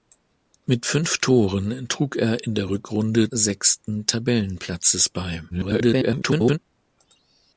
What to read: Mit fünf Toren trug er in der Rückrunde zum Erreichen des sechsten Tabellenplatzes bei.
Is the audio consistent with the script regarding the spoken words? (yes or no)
no